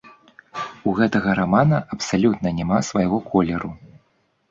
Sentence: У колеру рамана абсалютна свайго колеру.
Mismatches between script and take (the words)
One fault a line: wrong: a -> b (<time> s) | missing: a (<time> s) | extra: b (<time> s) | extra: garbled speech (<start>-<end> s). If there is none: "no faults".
wrong: колеру -> гэтага (1.0 s)
extra: няма (2.6 s)